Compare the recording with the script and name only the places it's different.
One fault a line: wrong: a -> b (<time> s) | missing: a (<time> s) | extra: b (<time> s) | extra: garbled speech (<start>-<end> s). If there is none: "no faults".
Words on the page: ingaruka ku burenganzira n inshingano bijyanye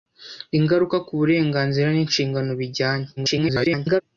extra: garbled speech (3.2-4.0 s)